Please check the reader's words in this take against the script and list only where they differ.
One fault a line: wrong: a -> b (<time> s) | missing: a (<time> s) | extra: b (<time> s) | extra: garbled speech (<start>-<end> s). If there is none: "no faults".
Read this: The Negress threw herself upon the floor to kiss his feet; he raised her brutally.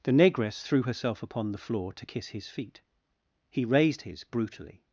wrong: her -> his (4.0 s)